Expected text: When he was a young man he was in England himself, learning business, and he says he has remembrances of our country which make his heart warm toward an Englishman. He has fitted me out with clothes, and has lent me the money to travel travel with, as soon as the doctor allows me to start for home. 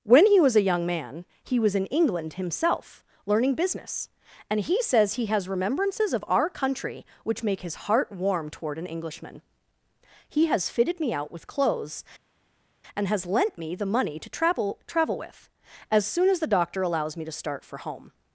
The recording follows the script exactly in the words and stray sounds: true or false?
true